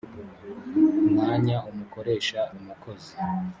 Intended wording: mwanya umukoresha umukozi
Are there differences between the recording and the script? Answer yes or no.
no